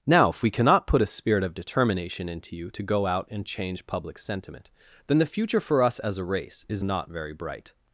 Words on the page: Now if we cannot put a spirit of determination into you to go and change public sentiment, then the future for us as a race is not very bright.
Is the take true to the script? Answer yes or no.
no